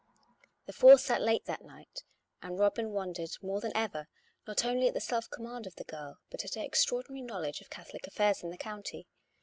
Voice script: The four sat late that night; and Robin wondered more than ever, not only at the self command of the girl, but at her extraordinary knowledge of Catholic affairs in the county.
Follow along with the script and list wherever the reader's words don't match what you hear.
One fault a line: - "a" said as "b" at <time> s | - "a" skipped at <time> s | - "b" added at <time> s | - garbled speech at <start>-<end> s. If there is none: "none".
none